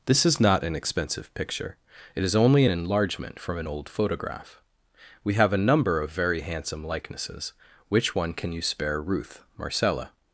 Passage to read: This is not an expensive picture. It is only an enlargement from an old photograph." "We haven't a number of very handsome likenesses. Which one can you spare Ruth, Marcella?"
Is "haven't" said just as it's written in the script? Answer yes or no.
no